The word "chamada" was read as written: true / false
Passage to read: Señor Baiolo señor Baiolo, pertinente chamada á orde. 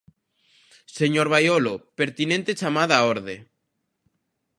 true